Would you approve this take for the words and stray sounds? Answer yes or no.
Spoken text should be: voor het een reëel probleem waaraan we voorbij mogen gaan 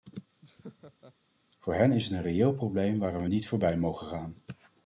no